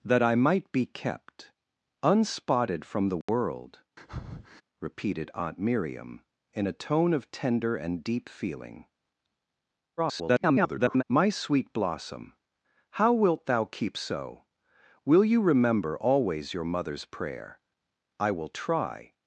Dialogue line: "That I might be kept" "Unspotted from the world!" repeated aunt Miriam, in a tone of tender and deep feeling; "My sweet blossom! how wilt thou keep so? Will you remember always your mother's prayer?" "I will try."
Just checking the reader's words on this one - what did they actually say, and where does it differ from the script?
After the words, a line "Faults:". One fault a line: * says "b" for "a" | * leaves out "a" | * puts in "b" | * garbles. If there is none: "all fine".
"That I might be kept" "Unspotted from the world!" repeated aunt Miriam, in a tone of tender and deep feeling; [garbled] "My sweet blossom! how wilt thou keep so? Will you remember always your mother's prayer?" "I will try."
Faults:
* garbles